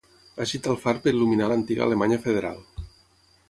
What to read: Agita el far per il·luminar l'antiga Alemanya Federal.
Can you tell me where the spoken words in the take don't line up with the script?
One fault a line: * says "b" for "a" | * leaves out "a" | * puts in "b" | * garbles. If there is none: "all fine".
all fine